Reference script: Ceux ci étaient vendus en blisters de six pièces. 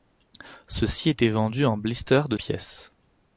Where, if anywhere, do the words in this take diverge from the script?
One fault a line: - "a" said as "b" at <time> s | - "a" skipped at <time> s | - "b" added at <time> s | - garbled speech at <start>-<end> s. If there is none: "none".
- "six" skipped at 2.4 s